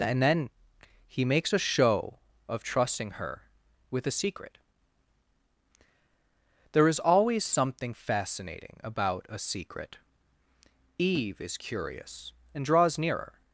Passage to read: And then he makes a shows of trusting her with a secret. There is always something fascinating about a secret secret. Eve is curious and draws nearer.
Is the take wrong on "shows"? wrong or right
wrong